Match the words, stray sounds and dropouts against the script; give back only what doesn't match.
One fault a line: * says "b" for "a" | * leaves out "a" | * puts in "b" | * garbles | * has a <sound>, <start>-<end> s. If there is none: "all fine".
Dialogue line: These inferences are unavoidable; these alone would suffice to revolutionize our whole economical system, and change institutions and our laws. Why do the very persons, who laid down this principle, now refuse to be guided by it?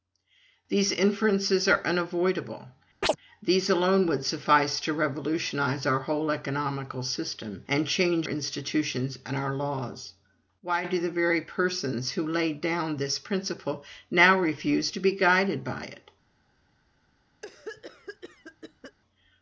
* has a chirp, 3.0-3.2 s
* has a cough, 17.4-19.0 s